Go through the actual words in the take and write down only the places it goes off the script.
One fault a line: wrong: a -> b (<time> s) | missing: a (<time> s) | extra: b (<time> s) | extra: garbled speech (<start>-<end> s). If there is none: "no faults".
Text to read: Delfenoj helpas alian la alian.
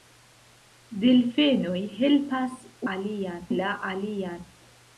no faults